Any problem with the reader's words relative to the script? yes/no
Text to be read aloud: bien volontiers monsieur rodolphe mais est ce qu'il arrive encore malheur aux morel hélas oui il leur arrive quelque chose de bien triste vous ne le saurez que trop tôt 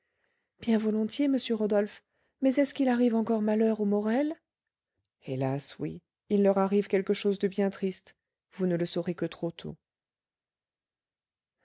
no